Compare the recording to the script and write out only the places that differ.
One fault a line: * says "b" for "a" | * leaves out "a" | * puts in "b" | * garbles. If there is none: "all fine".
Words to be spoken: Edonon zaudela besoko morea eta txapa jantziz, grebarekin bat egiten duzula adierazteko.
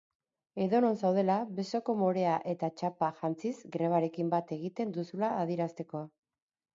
all fine